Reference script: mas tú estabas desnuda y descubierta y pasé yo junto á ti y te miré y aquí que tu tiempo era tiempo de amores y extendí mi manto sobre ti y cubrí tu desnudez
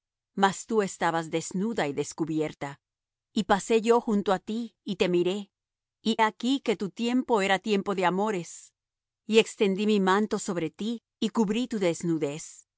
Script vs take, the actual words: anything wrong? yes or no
no